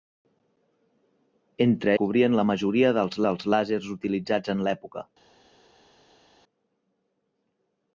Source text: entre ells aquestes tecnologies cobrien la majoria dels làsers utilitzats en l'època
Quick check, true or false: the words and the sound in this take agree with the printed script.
false